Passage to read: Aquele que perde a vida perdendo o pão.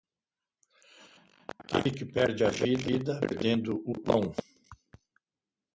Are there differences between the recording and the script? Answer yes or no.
no